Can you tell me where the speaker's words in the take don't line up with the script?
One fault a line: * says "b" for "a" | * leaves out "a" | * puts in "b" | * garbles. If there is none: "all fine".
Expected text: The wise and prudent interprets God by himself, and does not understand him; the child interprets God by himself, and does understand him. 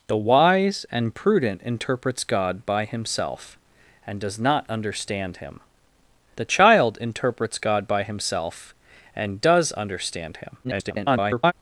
* garbles